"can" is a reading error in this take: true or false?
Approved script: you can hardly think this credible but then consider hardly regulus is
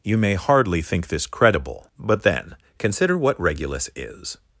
true